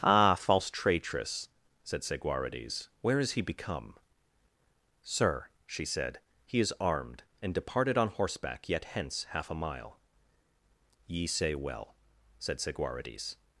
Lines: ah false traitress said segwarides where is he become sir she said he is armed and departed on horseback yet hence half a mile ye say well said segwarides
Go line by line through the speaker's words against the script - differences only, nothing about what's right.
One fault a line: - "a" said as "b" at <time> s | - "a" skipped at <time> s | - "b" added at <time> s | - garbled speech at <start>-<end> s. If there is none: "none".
none